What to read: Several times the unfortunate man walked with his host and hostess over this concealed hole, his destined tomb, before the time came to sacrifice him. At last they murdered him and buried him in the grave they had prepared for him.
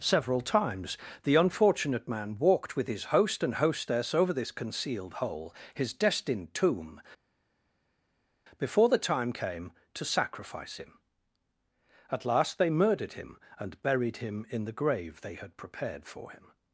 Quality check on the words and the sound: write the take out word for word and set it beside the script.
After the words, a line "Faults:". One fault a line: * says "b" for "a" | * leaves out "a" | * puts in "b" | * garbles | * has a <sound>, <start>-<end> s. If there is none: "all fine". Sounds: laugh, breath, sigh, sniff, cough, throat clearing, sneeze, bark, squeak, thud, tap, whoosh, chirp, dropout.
Several times the unfortunate man walked with his host and hostess over this concealed hole, his destined tomb, before the time came to sacrifice him. At last they murdered him and buried him in the grave they had prepared for him.
Faults:
all fine